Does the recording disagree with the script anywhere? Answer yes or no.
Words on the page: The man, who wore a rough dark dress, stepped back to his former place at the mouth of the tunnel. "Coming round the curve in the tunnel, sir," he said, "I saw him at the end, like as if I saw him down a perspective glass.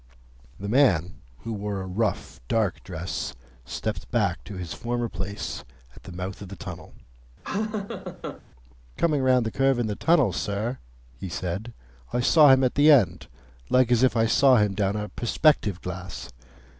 no